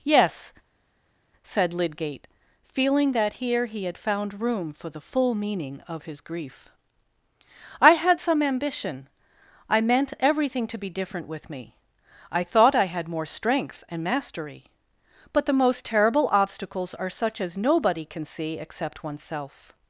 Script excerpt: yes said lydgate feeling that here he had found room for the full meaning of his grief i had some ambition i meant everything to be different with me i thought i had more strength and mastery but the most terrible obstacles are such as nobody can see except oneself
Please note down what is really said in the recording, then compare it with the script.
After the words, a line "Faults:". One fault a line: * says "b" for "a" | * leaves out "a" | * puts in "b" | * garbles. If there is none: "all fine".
yes said lydgate feeling that here he had found room for the full meaning of his grief i had some ambition i meant everything to be different with me i thought i had more strength and mastery but the most terrible obstacles are such as nobody can see except oneself
Faults:
all fine